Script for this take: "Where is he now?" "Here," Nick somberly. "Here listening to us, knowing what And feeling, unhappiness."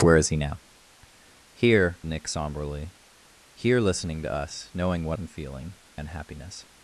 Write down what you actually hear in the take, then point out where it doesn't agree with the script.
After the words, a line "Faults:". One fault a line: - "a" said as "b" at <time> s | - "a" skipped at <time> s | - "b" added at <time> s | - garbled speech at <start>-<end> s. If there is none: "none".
"Where is he now?" "Here," Nick somberly. "Here listening to us, knowing what And feeling, unhappiness."
Faults:
none